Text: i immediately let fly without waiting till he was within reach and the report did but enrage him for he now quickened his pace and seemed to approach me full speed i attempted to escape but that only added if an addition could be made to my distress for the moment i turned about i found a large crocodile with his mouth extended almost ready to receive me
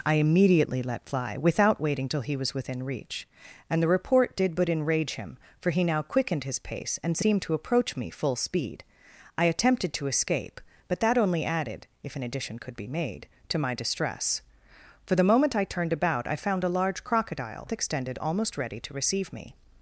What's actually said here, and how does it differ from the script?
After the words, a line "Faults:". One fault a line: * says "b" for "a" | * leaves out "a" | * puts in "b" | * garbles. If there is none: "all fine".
i immediately let fly without waiting till he was within reach and the report did but enrage him for he now quickened his pace and seemed to approach me full speed i attempted to escape but that only added if an addition could be made to my distress for the moment i turned about i found a large crocodile extended almost ready to receive me
Faults:
* leaves out "with his mouth"